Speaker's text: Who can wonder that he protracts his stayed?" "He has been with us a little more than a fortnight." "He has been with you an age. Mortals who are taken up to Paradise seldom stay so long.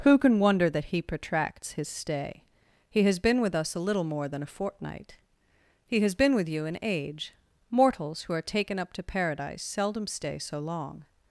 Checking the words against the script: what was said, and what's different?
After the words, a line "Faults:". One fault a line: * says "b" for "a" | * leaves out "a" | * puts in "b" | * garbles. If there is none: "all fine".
Who can wonder that he protracts his stay?" "He has been with us a little more than a fortnight." "He has been with you an age. Mortals who are taken up to Paradise seldom stay so long.
Faults:
* says "stay" for "stayed"